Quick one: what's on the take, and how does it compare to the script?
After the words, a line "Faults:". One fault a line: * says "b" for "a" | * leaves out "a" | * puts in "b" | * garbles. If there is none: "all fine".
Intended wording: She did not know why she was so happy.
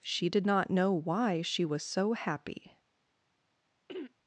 She did not know why she was so happy.
Faults:
all fine